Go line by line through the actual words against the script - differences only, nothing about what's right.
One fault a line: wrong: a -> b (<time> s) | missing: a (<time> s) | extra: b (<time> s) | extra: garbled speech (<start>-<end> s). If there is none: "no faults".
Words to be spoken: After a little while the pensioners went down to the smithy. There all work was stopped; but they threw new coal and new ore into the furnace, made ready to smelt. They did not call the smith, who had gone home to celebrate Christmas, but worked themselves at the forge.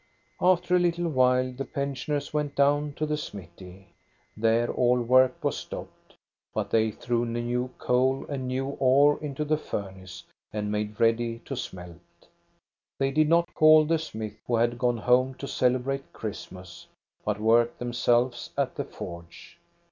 extra: and (10.5 s)